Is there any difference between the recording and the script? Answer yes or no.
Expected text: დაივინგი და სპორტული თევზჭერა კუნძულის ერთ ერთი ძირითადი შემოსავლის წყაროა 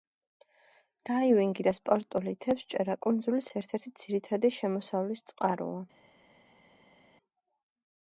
no